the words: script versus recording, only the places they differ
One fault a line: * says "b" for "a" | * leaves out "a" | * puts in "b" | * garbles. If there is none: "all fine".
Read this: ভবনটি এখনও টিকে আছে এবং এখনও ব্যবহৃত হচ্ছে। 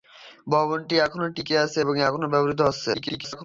* garbles